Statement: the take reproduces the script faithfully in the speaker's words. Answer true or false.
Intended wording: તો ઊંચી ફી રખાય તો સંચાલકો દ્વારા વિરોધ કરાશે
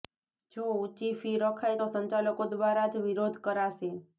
false